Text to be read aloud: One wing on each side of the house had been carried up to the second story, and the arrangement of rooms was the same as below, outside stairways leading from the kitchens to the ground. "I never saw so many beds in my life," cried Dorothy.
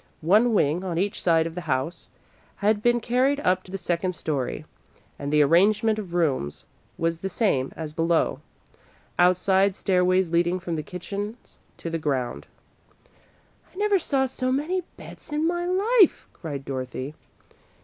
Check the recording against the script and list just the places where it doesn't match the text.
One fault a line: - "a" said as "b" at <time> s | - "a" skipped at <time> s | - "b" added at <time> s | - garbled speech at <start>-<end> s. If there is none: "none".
none